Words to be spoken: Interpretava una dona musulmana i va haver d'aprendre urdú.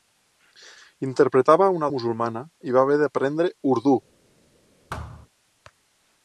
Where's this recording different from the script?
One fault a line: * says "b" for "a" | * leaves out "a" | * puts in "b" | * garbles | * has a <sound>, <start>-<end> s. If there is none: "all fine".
* leaves out "dona"
* has a thud, 4.9-5.3 s